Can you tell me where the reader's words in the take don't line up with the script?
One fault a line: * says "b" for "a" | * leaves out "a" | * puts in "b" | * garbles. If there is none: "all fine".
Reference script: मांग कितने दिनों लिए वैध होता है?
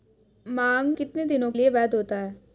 all fine